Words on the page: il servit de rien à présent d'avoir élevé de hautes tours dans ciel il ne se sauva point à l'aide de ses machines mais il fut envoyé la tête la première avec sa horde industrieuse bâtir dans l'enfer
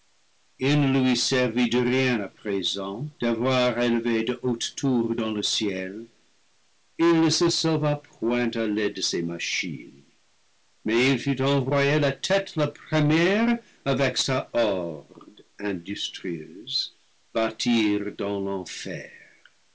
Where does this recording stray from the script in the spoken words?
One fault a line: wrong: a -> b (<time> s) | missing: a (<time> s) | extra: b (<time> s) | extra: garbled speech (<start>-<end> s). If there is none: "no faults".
extra: ne lui (0.8 s)
extra: le (5.3 s)